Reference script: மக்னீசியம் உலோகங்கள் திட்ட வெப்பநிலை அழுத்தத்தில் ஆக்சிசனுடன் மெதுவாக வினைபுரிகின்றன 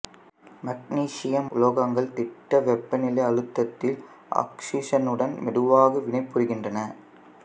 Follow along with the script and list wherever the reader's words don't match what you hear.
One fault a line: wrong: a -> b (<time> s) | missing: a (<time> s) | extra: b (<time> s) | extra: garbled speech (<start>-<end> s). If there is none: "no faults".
no faults